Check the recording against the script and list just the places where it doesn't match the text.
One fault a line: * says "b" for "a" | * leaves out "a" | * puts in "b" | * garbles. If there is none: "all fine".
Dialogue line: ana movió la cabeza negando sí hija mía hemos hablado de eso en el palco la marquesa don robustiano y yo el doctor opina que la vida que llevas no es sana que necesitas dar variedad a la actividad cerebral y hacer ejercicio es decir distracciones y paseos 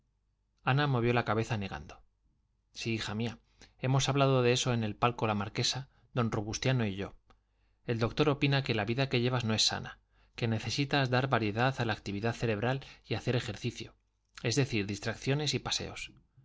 all fine